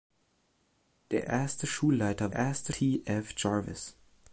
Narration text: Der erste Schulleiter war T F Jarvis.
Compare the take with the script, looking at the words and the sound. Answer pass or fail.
fail